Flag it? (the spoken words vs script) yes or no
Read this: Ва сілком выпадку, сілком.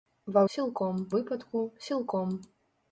no